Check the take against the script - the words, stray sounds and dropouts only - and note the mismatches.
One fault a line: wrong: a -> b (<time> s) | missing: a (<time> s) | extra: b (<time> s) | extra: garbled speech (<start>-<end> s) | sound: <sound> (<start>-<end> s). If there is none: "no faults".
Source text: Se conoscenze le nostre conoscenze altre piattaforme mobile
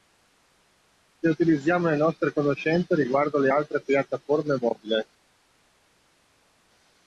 wrong: conoscenze -> utilizziamo (1.3 s)
extra: riguardo le (3.0 s)